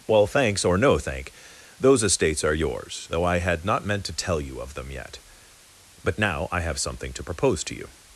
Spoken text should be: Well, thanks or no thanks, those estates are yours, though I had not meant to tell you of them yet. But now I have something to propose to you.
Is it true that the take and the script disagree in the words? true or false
true